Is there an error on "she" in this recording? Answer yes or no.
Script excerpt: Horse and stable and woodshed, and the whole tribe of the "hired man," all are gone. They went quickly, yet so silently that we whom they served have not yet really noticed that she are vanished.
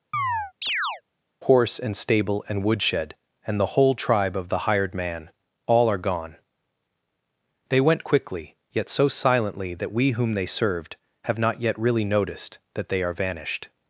yes